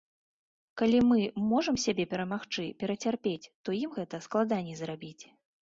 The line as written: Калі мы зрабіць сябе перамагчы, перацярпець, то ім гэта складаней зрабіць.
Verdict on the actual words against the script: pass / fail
fail